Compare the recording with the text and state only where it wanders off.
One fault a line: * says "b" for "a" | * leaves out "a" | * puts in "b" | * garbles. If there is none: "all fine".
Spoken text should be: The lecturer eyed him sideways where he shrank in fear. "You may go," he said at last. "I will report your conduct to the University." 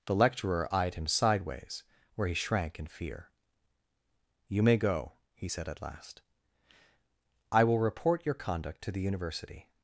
all fine